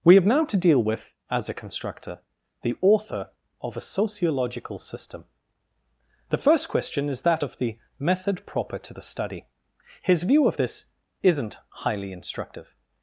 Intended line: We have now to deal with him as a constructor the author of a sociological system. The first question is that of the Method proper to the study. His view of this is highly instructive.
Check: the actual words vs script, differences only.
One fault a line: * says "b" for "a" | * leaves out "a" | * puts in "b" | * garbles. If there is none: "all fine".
* leaves out "him"
* says "isn't" for "is"